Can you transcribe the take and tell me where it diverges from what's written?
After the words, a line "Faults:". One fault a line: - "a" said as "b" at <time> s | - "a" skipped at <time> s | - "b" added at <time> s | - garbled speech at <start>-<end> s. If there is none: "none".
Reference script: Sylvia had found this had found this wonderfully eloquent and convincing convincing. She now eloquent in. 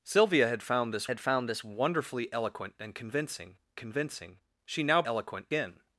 Sylvia had found this had found this wonderfully eloquent and convincing convincing. She now eloquent in.
Faults:
none